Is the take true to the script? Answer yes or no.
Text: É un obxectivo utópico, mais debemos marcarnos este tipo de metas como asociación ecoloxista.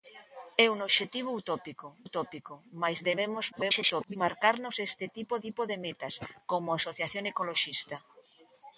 no